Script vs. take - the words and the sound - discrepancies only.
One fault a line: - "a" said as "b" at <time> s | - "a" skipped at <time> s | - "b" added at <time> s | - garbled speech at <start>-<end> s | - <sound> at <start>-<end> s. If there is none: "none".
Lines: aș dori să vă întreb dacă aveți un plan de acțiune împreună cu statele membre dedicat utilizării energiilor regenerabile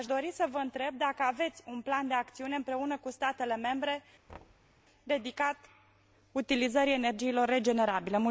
- thud at 4.3-4.8 s